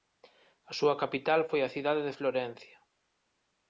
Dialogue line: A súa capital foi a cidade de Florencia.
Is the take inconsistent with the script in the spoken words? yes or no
no